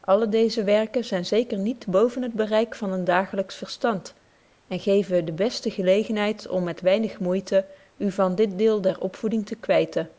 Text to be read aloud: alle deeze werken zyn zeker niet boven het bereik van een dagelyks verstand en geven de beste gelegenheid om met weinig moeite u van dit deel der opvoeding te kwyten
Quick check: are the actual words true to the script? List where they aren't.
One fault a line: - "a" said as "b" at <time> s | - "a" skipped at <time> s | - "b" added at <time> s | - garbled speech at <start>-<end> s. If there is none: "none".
none